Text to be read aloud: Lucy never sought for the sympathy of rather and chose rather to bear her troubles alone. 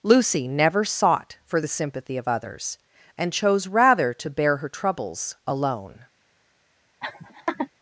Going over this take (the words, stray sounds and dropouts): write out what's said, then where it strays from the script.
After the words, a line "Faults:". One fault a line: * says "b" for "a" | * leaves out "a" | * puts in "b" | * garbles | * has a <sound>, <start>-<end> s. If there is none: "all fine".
Lucy never sought for the sympathy of others and chose rather to bear her troubles alone.
Faults:
* says "others" for "rather"
* has a laugh, 7.0-7.7 s